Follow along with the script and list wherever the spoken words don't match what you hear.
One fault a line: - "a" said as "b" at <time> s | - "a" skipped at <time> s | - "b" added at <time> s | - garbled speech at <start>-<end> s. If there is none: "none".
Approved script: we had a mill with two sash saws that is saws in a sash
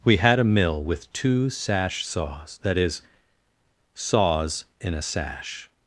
none